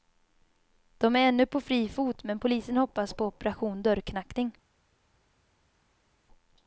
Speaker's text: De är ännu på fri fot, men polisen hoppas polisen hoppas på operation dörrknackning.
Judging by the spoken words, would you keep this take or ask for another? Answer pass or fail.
fail